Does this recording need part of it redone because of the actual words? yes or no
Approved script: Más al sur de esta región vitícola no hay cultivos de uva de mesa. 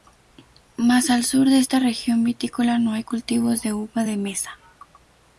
no